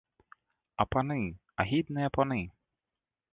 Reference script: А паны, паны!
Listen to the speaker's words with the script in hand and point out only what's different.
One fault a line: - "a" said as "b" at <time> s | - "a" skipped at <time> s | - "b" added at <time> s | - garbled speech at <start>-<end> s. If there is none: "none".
- "агідныя" added at 1.6 s